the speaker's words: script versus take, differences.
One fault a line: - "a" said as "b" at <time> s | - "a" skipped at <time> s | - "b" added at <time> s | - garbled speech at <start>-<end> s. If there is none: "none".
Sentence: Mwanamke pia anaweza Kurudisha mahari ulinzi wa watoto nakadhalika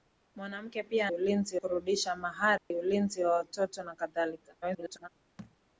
- "anaweza" said as "ulinzi" at 1.1 s
- garbled speech at 4.6-5.1 s